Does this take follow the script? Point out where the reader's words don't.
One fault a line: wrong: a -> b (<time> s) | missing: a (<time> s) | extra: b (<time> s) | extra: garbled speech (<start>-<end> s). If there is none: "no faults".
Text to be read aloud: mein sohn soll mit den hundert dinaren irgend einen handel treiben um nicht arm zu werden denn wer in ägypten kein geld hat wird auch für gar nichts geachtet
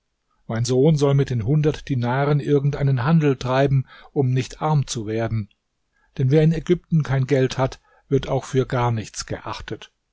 no faults